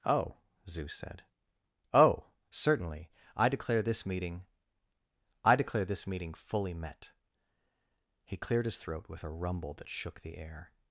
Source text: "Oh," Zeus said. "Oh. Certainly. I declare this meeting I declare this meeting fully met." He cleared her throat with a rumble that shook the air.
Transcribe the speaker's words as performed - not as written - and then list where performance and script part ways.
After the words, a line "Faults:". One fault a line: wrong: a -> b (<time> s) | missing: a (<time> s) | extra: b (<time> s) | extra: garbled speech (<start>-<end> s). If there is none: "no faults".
"Oh," Zeus said. "Oh. Certainly. I declare this meeting I declare this meeting fully met." He cleared his throat with a rumble that shook the air.
Faults:
wrong: her -> his (8.7 s)